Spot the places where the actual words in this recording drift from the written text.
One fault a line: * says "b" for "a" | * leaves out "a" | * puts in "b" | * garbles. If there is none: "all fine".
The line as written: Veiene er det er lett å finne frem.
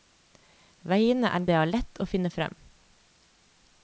all fine